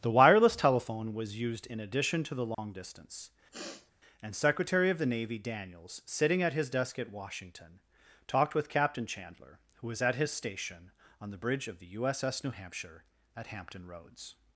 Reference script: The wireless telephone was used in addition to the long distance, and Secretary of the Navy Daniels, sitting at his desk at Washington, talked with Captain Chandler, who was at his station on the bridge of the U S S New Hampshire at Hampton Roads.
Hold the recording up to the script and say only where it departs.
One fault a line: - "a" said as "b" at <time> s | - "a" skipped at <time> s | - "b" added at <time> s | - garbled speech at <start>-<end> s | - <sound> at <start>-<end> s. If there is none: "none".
- dropout at 2.5-2.6 s
- sniff at 3.5-3.9 s